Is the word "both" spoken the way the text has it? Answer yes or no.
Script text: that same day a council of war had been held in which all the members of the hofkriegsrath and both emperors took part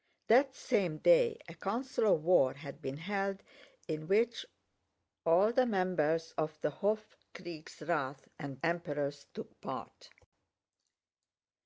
no